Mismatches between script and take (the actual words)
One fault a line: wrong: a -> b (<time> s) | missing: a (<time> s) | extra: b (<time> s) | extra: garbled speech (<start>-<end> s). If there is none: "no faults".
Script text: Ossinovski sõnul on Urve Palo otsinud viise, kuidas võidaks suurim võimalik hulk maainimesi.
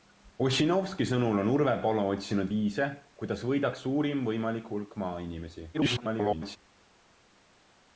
extra: garbled speech (5.7-6.6 s)